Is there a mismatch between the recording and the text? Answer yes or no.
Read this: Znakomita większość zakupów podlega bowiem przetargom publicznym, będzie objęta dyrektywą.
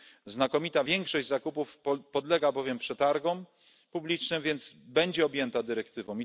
yes